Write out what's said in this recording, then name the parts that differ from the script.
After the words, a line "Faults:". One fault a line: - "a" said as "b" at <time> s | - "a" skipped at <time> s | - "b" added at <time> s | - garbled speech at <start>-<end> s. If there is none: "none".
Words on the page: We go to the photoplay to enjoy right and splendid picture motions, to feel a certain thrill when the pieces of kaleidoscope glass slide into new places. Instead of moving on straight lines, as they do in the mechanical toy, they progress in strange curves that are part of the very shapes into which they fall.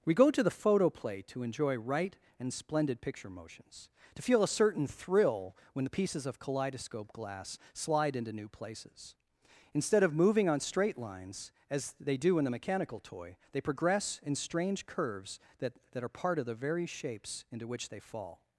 We go to the photoplay to enjoy right and splendid picture motions, to feel a certain thrill when the pieces of kaleidoscope glass slide into new places. Instead of moving on straight lines, as they do in the mechanical toy, they progress in strange curves that that are part of the very shapes into which they fall.
Faults:
- "that" added at 15.9 s